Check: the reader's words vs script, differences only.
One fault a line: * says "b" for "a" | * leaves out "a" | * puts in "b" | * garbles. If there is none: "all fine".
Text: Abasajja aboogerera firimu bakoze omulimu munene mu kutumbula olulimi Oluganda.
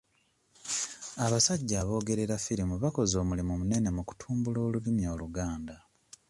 all fine